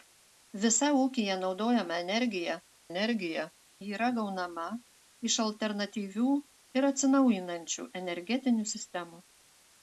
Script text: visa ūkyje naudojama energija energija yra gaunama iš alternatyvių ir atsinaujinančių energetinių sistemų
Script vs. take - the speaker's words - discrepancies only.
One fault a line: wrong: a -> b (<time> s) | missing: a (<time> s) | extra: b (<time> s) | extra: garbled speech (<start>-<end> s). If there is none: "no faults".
no faults